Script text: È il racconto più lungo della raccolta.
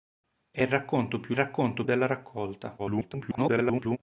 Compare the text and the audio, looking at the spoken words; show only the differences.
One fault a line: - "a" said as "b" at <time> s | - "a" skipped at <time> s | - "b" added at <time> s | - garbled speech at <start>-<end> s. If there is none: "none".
- "lungo" said as "racconto" at 1.3 s
- garbled speech at 2.8-4.0 s